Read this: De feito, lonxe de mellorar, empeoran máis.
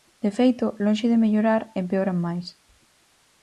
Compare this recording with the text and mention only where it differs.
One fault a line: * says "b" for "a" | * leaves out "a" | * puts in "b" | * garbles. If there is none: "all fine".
all fine